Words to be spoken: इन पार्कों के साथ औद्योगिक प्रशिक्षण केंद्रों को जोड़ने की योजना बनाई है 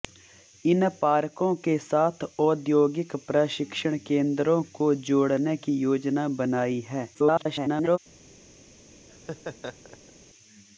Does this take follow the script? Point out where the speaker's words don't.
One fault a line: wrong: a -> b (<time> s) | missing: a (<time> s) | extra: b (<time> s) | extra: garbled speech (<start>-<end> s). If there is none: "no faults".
extra: garbled speech (7.1-8.0 s)